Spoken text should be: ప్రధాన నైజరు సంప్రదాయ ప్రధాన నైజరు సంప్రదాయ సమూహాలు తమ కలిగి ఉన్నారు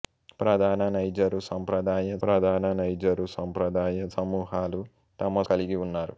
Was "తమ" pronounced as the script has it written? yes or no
yes